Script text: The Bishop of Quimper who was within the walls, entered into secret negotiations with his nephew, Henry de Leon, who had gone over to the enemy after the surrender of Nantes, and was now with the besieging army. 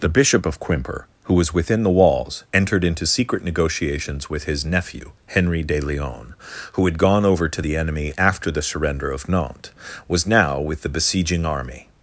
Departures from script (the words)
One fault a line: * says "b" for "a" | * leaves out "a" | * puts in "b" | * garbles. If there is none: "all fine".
* leaves out "and"